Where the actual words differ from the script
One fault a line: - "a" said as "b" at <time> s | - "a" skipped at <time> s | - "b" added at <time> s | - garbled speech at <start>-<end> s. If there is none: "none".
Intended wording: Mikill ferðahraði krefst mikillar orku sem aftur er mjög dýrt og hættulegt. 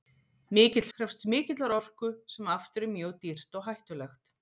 - "ferðahraði" skipped at 0.8 s